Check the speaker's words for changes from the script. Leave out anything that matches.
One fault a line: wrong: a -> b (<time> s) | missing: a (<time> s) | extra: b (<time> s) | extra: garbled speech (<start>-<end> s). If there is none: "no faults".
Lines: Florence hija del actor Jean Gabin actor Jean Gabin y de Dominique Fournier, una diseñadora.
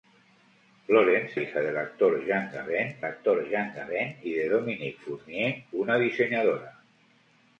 no faults